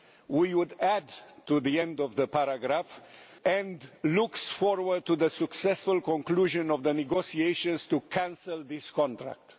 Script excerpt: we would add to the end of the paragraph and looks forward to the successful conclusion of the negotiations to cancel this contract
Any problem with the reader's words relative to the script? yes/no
no